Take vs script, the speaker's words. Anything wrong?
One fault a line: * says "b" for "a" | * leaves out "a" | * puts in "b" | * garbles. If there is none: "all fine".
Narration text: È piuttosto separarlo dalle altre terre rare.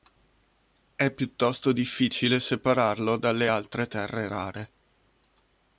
* puts in "difficile"